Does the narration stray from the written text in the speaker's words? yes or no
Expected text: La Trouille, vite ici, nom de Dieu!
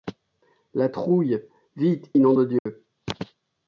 yes